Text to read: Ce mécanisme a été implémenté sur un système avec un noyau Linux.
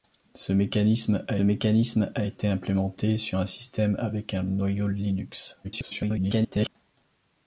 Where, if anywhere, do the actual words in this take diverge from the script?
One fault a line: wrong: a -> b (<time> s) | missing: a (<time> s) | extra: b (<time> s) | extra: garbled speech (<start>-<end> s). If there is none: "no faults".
extra: mécanisme a (1.4 s)
extra: garbled speech (5.6-6.7 s)